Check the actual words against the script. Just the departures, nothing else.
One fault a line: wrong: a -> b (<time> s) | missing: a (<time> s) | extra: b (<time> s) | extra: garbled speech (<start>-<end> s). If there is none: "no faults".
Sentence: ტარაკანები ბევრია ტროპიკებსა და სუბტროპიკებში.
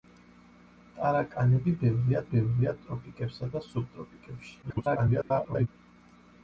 extra: ბევრია (2.3 s)
extra: garbled speech (4.6-5.7 s)